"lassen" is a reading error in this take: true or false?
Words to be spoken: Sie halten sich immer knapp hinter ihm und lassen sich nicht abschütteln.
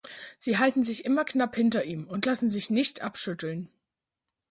false